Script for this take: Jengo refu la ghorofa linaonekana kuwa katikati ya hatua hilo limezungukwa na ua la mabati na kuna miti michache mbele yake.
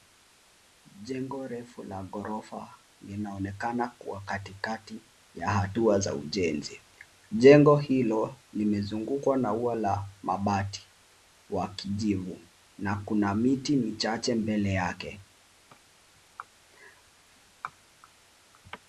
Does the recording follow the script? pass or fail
fail